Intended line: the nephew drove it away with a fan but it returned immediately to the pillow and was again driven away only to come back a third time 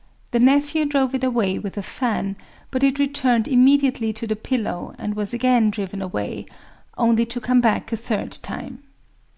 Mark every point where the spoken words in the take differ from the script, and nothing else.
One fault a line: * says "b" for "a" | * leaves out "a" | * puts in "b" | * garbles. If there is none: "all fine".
all fine